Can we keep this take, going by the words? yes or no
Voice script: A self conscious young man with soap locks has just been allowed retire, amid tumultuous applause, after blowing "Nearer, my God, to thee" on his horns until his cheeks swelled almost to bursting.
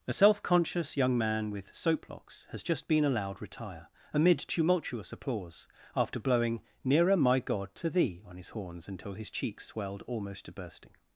yes